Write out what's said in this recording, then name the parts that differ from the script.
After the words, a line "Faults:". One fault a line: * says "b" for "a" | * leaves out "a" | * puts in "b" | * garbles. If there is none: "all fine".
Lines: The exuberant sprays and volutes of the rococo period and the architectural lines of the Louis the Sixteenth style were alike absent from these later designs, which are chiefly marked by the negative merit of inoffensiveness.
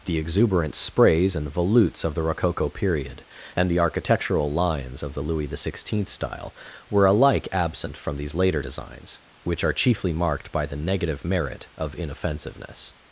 The exuberant sprays and volutes of the rococo period and the architectural lines of the Louis the Sixteenth style were alike absent from these later designs, which are chiefly marked by the negative merit of inoffensiveness.
Faults:
all fine